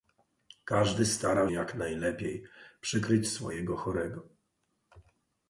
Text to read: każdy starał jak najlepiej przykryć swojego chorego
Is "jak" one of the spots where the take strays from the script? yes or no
no